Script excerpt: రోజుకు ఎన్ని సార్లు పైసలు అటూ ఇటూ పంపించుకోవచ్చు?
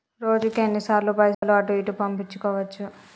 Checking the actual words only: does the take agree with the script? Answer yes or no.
yes